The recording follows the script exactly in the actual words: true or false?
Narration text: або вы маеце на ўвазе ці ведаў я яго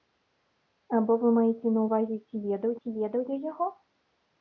false